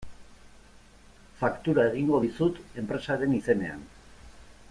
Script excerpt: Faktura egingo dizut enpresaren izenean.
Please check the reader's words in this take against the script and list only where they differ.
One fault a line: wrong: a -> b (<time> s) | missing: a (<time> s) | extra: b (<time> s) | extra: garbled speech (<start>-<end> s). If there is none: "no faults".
no faults